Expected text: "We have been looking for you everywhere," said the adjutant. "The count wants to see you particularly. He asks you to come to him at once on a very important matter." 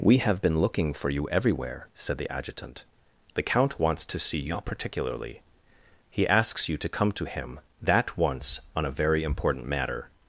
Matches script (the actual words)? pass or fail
fail